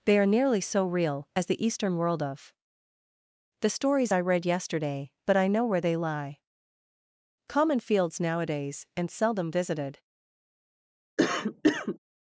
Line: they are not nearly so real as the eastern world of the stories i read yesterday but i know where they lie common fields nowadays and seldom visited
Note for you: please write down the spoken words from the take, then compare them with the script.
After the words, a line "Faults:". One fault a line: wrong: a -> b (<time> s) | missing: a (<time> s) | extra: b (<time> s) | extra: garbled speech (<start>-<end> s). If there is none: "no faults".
they are nearly so real as the eastern world of the stories i read yesterday but i know where they lie common fields nowadays and seldom visited
Faults:
missing: not (0.2 s)